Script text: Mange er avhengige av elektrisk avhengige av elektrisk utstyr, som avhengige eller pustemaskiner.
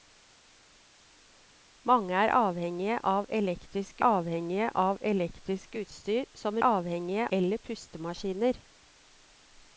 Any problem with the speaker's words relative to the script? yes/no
no